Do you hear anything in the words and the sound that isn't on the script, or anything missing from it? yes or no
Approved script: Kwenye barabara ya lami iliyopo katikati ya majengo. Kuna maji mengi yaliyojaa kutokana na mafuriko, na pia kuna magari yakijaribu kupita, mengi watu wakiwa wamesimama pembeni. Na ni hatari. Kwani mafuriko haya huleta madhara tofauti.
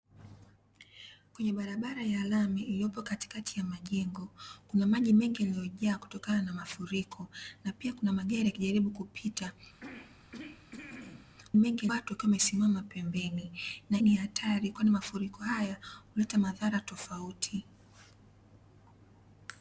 yes